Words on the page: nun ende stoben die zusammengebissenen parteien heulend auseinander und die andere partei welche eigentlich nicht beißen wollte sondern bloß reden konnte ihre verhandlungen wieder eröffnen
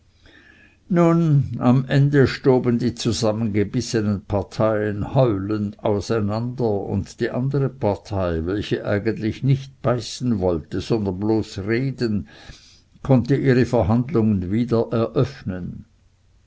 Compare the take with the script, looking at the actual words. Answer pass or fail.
fail